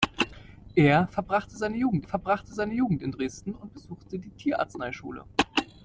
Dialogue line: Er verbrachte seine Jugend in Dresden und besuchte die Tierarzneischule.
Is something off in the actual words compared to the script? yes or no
yes